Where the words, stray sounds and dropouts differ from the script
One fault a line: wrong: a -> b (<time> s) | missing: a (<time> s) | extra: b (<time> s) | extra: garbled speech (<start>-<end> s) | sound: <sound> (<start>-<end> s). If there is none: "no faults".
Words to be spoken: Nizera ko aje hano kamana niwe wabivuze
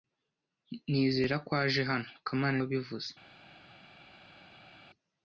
missing: niwe (2.6 s)